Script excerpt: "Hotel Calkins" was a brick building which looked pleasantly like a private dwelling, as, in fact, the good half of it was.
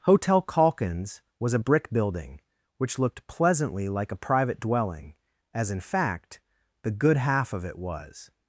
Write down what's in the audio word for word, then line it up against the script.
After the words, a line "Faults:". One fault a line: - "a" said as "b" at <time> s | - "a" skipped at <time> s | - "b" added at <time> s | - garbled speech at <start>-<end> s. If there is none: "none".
"Hotel Calkins" was a brick building which looked pleasantly like a private dwelling, as, in fact, the good half of it was.
Faults:
none